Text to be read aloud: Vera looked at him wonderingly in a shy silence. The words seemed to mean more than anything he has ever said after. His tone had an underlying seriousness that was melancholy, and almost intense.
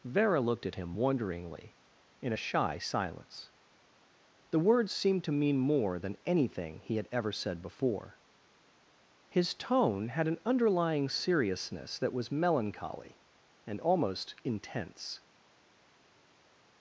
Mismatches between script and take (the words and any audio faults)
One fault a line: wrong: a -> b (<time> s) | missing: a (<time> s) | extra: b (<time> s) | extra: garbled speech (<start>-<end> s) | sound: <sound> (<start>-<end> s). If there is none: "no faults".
wrong: has -> had (7.0 s)
wrong: after -> before (7.6 s)